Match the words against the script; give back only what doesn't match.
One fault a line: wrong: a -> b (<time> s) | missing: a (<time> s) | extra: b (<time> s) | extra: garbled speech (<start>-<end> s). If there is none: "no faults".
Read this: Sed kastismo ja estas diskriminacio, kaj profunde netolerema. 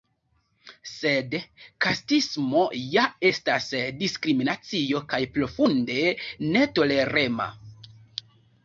no faults